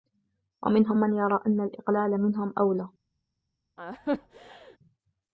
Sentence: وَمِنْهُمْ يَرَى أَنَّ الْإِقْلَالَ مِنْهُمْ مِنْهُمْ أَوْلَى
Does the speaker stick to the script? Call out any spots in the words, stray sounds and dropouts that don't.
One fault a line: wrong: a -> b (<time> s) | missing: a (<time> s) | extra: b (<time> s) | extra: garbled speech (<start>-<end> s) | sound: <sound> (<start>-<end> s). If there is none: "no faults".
extra: مَنْ (0.9 s)
missing: مِنْهُمْ (2.5 s)
sound: laugh (3.8-4.8 s)